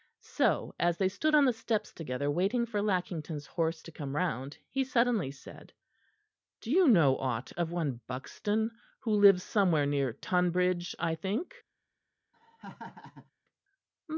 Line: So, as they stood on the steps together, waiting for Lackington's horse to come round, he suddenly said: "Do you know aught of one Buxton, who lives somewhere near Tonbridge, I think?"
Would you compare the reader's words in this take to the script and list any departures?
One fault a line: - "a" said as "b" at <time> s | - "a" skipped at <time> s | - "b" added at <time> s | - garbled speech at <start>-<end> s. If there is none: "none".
none